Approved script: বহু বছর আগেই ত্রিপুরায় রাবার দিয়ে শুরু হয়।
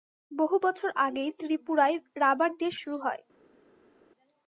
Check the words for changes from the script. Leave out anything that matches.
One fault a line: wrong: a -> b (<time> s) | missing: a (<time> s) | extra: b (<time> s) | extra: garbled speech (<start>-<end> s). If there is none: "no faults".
no faults